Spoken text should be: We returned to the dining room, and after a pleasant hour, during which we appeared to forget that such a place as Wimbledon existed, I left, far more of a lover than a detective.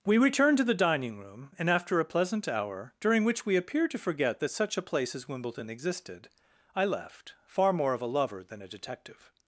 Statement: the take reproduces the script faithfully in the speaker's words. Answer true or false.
true